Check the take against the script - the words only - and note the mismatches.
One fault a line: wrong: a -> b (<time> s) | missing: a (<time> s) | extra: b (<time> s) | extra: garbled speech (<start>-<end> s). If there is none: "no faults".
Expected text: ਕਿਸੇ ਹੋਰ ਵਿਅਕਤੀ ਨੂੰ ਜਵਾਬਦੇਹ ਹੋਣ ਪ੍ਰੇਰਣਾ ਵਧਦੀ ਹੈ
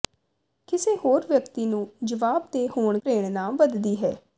no faults